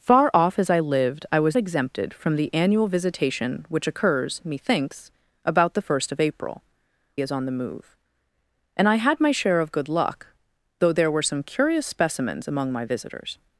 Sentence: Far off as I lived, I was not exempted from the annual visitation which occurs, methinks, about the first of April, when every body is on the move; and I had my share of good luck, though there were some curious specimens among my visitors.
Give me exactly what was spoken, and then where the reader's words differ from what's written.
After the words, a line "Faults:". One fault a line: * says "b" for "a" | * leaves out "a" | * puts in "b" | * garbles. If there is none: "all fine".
Far off as I lived, I was exempted from the annual visitation which occurs, methinks, about the first of April, is on the move; and I had my share of good luck, though there were some curious specimens among my visitors.
Faults:
* leaves out "not"
* leaves out "when every body"